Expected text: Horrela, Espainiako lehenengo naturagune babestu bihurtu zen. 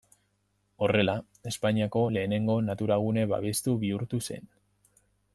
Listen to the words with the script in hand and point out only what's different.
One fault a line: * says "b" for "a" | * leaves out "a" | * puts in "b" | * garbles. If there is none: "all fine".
all fine